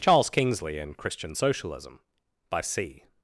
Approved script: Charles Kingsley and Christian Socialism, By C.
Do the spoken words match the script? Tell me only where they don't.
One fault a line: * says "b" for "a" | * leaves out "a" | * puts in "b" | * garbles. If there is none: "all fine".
all fine